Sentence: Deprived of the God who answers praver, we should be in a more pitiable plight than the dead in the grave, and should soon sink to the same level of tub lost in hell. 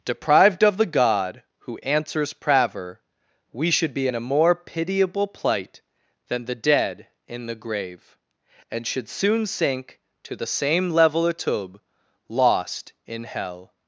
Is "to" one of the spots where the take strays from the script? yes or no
no